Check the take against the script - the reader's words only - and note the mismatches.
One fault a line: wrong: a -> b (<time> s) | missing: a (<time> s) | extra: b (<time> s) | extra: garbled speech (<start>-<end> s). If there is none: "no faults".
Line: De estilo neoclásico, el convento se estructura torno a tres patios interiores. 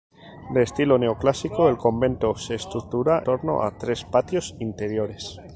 no faults